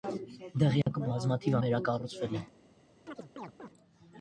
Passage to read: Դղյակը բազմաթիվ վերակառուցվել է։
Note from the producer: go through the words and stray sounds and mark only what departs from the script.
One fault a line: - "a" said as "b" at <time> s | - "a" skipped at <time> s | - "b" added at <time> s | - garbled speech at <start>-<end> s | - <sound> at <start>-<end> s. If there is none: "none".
- dropout at 0.8-0.9 s
- chirp at 3.1-3.7 s